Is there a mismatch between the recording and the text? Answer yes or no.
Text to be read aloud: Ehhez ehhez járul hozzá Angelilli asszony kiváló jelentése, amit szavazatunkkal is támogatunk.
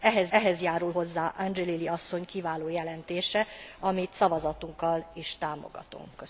no